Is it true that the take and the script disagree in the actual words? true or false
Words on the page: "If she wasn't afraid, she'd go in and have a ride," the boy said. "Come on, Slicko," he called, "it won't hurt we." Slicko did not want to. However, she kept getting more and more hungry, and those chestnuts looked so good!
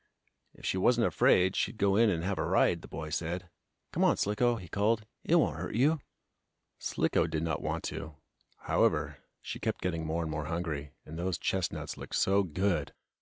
true